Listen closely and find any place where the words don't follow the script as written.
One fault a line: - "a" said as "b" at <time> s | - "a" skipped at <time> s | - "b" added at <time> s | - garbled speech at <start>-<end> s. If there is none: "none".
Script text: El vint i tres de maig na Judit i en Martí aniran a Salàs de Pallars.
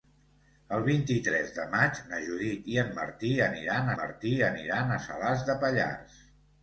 - "Martí aniran" added at 4.0 s